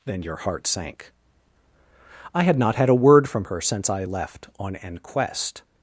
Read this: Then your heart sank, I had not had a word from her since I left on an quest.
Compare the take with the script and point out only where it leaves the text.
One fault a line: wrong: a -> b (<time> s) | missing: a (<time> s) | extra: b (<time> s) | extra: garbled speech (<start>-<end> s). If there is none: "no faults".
no faults